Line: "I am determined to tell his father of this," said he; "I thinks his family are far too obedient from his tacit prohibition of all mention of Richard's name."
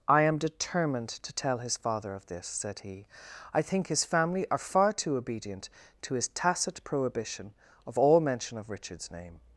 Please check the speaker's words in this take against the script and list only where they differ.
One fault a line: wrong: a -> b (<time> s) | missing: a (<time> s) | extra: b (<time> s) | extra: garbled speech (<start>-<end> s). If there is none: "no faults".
wrong: thinks -> think (3.6 s)
wrong: from -> to (6.0 s)